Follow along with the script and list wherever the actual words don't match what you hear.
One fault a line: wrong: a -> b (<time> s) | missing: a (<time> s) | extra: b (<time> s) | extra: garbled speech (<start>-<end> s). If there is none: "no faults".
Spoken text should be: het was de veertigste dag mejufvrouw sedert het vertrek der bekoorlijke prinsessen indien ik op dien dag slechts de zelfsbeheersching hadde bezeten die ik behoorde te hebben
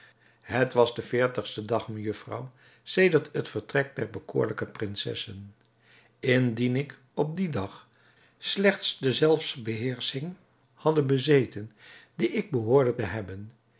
no faults